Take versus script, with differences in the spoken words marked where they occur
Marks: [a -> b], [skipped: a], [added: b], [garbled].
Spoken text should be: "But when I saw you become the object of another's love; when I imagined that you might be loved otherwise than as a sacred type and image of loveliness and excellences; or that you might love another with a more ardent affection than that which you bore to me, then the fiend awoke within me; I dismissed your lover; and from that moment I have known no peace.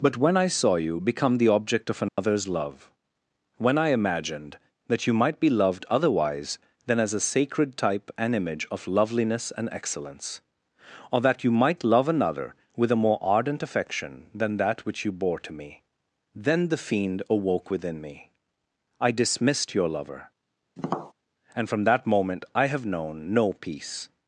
"But when I saw you become the object of another's love; when I imagined that you might be loved otherwise than as a sacred type and image of loveliness and [excellences; -> excellence] or that you might love another with a more ardent affection than that which you bore to me, then the fiend awoke within me; I dismissed your lover; and from that moment I have known no peace.